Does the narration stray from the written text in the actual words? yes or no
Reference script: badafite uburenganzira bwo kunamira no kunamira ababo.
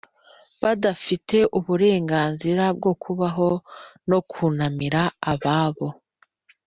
yes